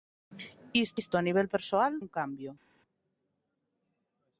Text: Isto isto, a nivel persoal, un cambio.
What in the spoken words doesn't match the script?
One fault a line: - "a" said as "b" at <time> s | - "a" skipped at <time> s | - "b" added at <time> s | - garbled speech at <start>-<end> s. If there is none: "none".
none